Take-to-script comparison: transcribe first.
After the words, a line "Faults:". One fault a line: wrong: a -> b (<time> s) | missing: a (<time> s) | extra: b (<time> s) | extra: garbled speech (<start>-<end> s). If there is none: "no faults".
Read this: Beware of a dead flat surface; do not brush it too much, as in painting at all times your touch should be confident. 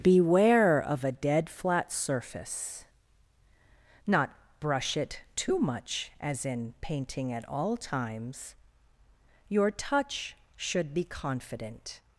Beware of a dead flat surface; not brush it too much, as in painting at all times your touch should be confident.
Faults:
missing: do (2.9 s)